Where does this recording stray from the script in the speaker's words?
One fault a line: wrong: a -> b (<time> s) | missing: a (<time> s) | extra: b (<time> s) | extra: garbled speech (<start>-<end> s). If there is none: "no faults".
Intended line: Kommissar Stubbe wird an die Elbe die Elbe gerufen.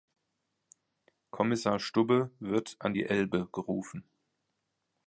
missing: die Elbe (3.5 s)